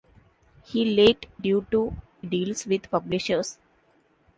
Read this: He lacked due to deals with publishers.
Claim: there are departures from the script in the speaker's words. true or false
false